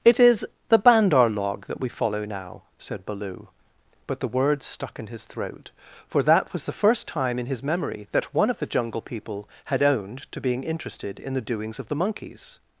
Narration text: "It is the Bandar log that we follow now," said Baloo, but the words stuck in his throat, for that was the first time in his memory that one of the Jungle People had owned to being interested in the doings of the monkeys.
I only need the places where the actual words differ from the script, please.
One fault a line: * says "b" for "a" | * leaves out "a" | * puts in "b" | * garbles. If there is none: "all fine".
all fine